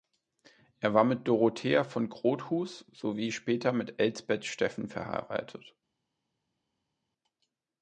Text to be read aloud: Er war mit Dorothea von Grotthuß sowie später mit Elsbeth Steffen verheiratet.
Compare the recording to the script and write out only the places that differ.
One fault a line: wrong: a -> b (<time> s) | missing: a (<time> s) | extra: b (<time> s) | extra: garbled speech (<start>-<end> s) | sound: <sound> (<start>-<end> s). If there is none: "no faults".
no faults